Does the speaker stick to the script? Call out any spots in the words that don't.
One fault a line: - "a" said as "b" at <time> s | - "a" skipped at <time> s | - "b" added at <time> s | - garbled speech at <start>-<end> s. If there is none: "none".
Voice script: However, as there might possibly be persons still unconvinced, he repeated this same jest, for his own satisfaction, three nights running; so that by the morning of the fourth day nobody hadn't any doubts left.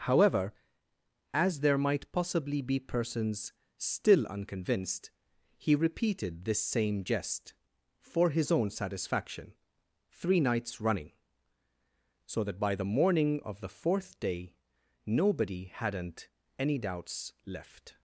none